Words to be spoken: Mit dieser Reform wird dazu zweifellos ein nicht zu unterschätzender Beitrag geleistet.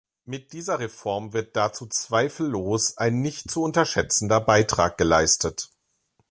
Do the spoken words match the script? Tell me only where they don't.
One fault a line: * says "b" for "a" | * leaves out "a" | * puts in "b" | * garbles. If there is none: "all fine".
all fine